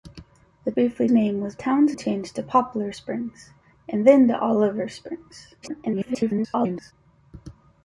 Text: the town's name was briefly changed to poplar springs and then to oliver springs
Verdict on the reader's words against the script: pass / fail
fail